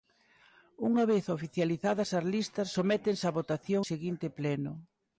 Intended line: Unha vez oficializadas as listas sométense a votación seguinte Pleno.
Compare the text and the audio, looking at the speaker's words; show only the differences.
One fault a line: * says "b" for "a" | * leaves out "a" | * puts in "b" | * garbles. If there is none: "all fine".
all fine